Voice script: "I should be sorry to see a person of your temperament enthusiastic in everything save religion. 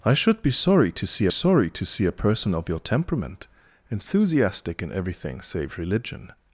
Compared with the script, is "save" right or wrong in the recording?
right